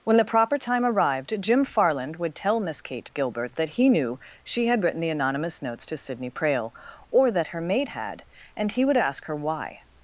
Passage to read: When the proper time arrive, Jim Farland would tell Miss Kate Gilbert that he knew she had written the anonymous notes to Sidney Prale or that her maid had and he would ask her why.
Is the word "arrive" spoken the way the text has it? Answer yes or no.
no